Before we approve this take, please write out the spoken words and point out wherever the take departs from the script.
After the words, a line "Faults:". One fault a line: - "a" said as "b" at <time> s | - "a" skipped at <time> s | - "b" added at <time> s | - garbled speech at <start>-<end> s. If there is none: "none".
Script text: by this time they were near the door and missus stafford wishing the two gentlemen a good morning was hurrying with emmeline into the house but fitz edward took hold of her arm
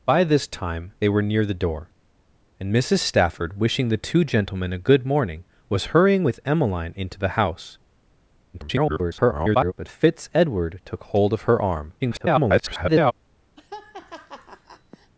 by this time they were near the door and missus stafford wishing the two gentlemen a good morning was hurrying with emmeline into the house [garbled] but fitz edward took hold of her arm [garbled]
Faults:
- garbled speech at 8.5-9.7 s
- garbled speech at 12.0-13.1 s